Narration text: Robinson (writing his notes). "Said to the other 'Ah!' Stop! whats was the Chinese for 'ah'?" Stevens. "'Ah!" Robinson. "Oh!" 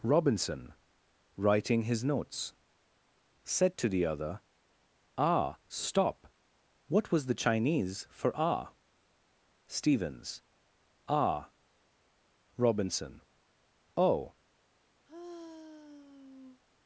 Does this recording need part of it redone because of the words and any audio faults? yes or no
yes